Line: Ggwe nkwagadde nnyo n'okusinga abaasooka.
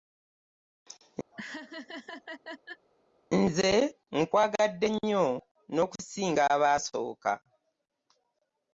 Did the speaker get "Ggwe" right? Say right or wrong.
wrong